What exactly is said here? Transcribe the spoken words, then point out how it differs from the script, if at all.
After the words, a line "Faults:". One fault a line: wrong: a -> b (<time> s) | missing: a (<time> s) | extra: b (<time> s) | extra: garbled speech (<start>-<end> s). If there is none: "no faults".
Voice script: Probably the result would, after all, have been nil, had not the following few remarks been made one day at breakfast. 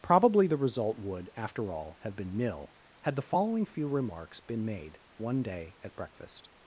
Probably the result would, after all, have been nil, had the following few remarks been made one day at breakfast.
Faults:
missing: not (3.2 s)